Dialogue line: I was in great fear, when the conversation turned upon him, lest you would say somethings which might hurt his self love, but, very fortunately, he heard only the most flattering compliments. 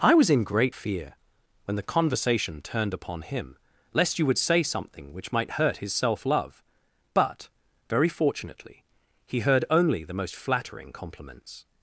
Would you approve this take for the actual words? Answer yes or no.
no